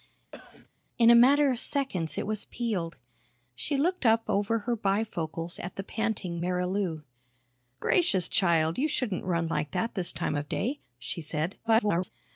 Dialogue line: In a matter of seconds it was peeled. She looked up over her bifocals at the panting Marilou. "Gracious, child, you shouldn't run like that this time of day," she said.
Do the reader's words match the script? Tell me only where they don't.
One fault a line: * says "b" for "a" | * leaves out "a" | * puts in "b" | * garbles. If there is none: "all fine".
* garbles